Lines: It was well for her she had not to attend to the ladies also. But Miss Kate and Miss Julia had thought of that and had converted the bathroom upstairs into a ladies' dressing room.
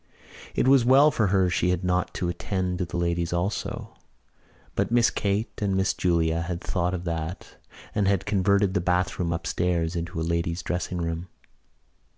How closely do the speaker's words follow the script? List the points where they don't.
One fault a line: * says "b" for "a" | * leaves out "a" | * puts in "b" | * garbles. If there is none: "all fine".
all fine